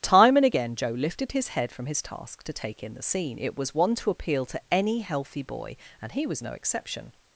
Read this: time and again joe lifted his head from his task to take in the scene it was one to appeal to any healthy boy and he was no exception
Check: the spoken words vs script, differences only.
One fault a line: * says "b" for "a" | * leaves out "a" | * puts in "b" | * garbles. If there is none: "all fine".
all fine